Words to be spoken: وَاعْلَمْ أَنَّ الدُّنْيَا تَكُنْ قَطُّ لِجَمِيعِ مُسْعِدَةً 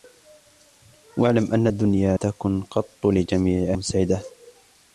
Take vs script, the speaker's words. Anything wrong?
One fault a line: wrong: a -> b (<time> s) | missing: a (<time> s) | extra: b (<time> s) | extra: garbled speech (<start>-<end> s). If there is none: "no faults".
no faults